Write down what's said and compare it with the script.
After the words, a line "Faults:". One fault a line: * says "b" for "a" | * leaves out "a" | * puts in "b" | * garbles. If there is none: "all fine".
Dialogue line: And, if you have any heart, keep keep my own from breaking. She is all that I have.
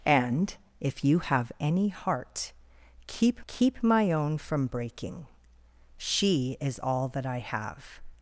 And, if you have any heart, keep keep my own from breaking. She is all that I have.
Faults:
all fine